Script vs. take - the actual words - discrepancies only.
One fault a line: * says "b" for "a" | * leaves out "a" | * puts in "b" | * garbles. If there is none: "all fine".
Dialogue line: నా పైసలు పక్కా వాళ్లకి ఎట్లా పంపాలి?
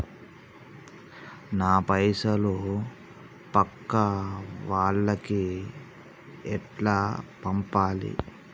all fine